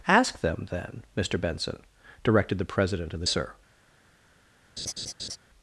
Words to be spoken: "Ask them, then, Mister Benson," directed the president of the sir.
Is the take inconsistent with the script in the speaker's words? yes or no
no